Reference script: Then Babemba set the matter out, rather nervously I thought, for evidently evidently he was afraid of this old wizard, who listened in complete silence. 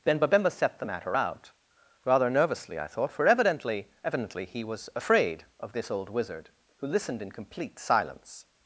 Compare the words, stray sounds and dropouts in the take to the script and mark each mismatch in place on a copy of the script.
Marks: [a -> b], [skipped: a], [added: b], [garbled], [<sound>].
Then Babemba set the matter out, rather nervously I thought, for evidently evidently he was afraid of this old wizard, who listened in complete silence.